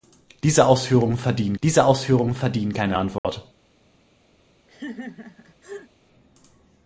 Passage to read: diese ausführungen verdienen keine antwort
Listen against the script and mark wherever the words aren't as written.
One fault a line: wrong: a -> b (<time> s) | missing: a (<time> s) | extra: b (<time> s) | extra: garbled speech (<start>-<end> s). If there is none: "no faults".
extra: diese ausführungen verdienen (1.6 s)